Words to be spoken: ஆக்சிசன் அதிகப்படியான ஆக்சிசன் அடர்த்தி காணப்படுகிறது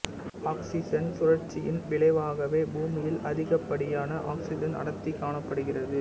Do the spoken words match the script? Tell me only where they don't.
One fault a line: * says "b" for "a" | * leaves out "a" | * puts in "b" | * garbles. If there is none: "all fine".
* puts in "சுழற்சியின் விளைவாகவே பூமியில்"